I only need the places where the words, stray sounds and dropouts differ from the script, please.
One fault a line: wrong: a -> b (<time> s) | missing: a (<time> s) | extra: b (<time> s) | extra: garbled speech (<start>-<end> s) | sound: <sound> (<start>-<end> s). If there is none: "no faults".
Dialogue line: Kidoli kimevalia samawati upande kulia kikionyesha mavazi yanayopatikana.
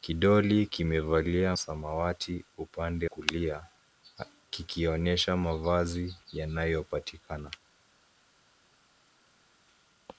no faults